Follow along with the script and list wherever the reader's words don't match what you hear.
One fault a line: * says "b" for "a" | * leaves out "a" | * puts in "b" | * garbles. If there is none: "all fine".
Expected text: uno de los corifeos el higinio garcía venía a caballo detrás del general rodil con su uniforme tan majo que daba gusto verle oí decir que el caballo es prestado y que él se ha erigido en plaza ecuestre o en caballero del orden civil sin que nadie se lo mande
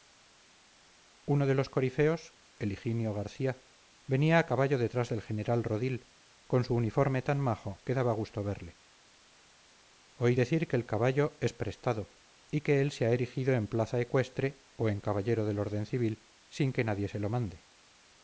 all fine